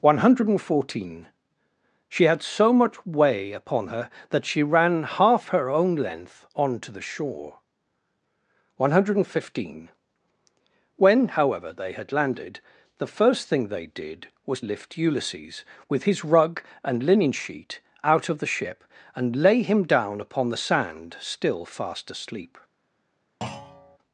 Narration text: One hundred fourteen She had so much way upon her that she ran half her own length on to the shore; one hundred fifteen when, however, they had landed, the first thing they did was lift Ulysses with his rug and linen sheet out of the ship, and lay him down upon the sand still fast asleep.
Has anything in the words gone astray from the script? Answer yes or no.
no